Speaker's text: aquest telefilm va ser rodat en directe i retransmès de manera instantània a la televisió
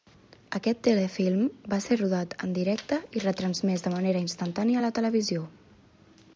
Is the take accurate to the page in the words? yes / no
yes